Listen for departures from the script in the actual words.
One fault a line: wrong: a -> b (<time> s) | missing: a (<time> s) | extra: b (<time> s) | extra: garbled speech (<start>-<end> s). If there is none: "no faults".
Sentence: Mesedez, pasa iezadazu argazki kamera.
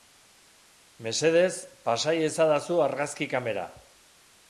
no faults